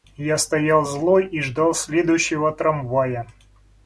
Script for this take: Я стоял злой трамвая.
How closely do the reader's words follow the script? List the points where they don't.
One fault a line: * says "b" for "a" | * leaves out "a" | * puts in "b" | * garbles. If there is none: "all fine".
* puts in "и ждал следующего"